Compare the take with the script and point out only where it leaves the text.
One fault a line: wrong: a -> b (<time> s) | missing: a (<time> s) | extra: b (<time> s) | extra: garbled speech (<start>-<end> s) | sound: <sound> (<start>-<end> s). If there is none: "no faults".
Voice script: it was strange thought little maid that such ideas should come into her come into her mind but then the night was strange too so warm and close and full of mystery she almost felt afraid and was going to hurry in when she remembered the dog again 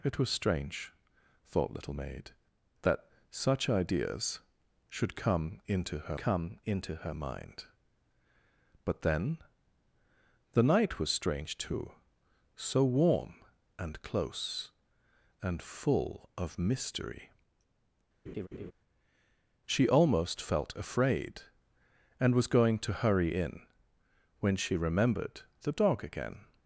sound: laugh (18.3-18.7 s)